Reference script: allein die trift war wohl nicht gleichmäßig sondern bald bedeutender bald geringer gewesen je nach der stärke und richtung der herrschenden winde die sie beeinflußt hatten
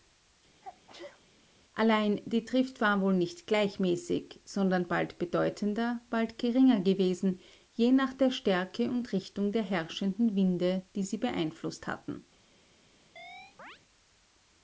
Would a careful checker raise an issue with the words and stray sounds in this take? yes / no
yes